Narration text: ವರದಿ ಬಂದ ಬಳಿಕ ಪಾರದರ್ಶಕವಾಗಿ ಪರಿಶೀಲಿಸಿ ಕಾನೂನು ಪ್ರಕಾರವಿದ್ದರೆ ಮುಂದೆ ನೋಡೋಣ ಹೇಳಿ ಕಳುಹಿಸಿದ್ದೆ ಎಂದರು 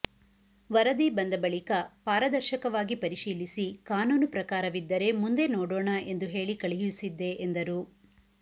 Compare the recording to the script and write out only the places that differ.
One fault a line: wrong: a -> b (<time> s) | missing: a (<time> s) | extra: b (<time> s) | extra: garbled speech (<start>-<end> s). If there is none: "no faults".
extra: ಎಂದು (6.1 s)